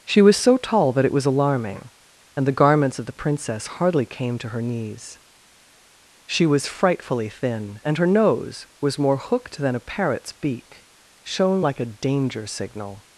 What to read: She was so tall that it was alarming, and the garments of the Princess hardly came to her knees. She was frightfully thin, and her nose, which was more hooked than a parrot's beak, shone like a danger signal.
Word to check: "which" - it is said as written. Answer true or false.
false